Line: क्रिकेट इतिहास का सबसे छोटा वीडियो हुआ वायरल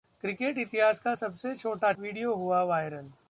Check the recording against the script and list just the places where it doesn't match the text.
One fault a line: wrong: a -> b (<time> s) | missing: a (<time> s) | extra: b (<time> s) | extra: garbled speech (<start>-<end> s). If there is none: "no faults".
no faults